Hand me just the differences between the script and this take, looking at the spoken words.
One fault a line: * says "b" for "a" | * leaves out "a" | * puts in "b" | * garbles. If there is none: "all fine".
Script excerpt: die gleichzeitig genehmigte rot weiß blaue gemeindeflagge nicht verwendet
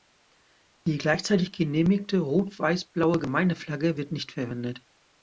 * puts in "wird"